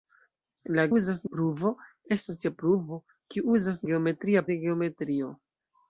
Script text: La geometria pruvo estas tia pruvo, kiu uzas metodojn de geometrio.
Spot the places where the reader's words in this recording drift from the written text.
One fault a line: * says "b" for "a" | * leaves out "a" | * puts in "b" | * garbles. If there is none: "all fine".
* says "uzas" for "geometria"
* says "geometria" for "metodojn"